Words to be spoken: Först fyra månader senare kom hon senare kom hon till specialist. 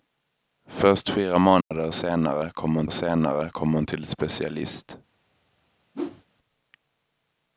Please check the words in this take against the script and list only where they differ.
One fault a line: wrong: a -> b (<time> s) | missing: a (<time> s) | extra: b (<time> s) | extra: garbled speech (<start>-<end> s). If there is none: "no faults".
no faults